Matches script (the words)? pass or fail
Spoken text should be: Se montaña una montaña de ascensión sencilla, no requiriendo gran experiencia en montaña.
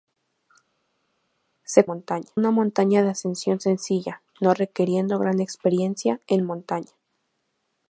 pass